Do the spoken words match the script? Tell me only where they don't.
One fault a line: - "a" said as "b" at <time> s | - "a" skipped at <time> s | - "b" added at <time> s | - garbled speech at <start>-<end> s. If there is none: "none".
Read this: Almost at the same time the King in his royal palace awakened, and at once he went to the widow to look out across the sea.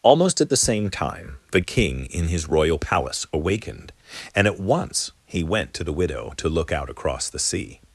none